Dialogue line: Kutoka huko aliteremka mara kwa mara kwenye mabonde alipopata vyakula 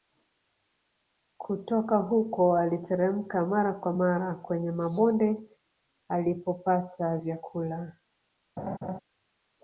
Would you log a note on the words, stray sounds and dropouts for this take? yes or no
yes